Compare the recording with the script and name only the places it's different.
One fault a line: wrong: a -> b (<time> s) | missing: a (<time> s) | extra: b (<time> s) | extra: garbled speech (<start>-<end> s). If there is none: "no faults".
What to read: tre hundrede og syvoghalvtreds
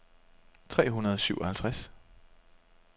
no faults